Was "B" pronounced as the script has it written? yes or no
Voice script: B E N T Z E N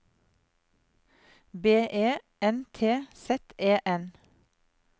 yes